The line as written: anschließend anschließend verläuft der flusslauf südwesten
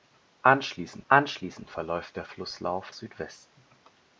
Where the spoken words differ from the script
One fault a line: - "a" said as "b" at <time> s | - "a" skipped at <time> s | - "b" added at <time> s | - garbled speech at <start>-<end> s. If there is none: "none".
none